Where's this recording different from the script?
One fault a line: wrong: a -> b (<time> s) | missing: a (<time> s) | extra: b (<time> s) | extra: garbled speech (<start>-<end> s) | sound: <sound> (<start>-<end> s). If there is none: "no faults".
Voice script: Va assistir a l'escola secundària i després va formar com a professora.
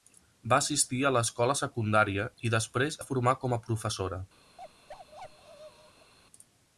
sound: bark (4.6-6.1 s)